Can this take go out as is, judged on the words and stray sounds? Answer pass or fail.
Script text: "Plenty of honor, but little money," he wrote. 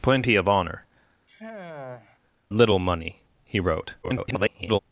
fail